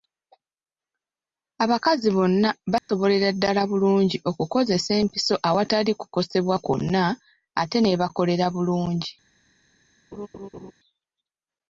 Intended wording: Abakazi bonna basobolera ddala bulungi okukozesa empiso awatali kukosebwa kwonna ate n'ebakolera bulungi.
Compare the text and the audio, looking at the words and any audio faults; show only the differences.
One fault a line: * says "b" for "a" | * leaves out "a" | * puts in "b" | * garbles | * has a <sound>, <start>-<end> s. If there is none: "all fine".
* has a dropout, 2.8-2.9 s
* has a laugh, 10.1-10.7 s